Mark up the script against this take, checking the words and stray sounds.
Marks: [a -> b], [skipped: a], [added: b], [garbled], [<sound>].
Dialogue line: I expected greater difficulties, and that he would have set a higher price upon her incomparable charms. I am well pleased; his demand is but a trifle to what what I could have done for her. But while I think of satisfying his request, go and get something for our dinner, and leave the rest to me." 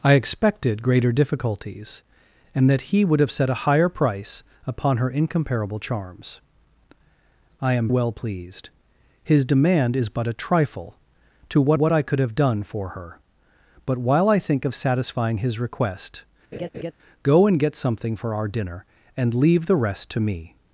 I expected greater difficulties, and that he would have set a higher price upon her incomparable charms. I am well pleased; his demand is but a trifle to what what I could have done for her. But while I think of satisfying his request, [laugh] go and get something for our dinner, and leave the rest to me."